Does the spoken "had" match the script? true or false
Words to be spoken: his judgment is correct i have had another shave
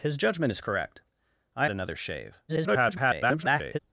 false